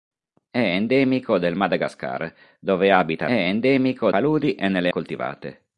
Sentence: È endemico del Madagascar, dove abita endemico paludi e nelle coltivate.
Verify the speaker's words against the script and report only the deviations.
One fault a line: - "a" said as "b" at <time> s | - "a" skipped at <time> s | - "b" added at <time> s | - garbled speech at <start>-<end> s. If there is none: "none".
none